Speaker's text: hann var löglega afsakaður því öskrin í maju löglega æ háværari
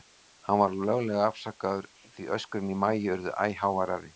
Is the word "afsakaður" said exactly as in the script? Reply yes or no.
yes